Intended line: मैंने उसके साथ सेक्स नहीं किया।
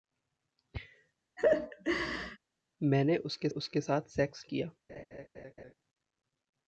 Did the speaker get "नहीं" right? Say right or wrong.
wrong